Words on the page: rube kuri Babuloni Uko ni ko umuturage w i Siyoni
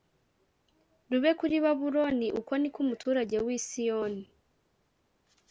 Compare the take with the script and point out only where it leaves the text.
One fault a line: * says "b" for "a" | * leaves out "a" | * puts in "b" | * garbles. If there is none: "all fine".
all fine